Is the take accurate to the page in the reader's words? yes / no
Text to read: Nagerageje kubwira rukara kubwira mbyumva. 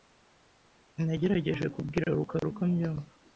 no